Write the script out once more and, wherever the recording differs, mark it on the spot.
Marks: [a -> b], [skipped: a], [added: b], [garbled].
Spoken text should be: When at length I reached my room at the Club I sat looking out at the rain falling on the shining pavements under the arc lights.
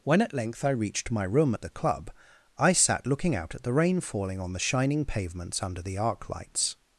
When at length I reached my room at the Club I sat looking out at the rain falling on the shining pavements under the arc lights.